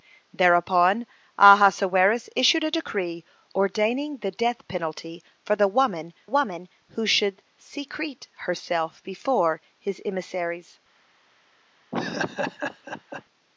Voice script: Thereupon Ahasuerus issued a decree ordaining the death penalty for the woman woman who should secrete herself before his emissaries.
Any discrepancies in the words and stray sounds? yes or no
yes